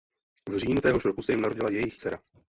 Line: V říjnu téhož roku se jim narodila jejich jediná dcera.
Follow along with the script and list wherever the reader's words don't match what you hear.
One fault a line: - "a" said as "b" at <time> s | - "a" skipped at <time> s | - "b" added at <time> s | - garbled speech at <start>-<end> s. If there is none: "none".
- "jediná" skipped at 2.0 s